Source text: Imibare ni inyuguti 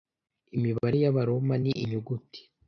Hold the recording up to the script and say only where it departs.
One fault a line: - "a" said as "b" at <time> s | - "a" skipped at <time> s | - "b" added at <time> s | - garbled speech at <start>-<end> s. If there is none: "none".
- "y'Abaroma" added at 1.0 s